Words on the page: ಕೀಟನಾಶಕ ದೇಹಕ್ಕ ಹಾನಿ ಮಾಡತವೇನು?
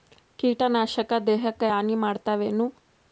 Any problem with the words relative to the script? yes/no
no